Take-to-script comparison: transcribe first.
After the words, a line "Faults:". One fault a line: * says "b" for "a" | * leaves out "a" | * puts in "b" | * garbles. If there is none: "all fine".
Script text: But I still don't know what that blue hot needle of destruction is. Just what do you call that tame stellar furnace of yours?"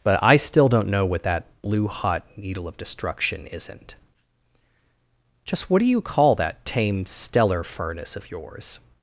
But I still don't know what that blue hot needle of destruction isn't. Just what do you call that tame stellar furnace of yours?"
Faults:
* says "isn't" for "is"